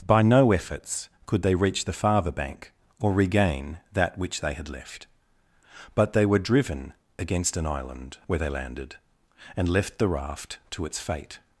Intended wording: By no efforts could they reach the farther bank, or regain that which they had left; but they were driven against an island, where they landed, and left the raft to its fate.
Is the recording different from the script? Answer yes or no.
no